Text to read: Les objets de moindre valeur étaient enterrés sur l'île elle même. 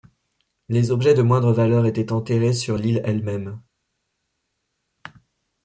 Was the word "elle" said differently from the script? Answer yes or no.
no